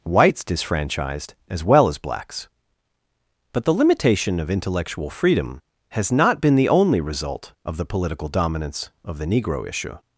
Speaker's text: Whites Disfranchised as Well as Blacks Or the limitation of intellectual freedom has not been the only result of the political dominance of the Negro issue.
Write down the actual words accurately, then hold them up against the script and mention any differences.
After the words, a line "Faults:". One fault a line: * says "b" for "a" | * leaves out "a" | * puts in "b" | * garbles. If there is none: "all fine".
Whites Disfranchised as Well as Blacks But the limitation of intellectual freedom has not been the only result of the political dominance of the Negro issue.
Faults:
* says "But" for "Or"